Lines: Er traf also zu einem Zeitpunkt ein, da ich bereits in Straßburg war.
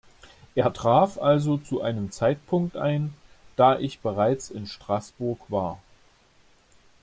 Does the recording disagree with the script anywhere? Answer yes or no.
no